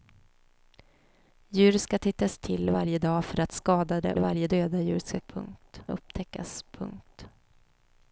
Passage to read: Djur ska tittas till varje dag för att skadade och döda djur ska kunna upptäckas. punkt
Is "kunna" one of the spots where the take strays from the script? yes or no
yes